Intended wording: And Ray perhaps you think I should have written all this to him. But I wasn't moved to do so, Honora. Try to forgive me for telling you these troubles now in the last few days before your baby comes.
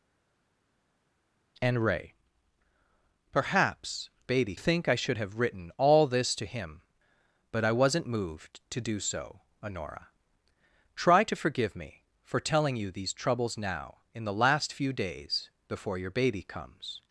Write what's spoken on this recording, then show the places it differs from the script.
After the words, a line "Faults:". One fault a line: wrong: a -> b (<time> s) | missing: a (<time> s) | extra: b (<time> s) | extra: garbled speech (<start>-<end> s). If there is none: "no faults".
And Ray perhaps baby think I should have written all this to him. But I wasn't moved to do so, Honora. Try to forgive me for telling you these troubles now in the last few days before your baby comes.
Faults:
wrong: you -> baby (4.2 s)